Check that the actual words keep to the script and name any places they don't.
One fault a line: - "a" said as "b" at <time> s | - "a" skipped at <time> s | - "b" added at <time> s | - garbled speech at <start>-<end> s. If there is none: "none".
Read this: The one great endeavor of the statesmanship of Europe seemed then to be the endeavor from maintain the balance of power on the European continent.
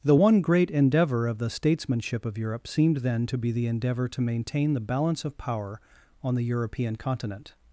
- "from" said as "to" at 4.1 s